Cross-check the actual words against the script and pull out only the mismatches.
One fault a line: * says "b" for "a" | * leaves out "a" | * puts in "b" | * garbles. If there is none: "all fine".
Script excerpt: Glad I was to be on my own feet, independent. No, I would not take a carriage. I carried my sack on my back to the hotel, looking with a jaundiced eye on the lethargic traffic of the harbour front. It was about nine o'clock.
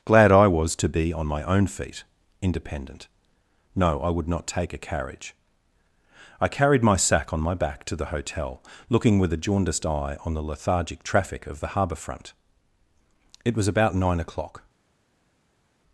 all fine